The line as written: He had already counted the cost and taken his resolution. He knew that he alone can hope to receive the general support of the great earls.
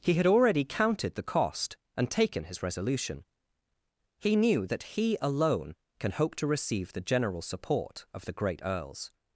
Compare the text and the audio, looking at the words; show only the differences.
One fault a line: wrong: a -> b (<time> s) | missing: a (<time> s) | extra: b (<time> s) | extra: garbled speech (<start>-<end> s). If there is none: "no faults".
no faults